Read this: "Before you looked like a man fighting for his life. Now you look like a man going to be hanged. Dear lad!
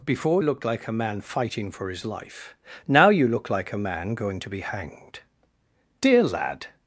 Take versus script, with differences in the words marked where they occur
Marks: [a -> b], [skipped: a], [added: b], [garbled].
"Before [skipped: you] looked like a man fighting for his life. Now you look like a man going to be hanged. Dear lad!